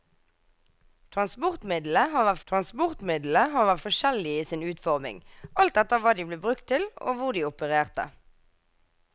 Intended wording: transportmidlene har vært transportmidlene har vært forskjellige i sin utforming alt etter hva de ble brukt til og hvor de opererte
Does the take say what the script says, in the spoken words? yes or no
yes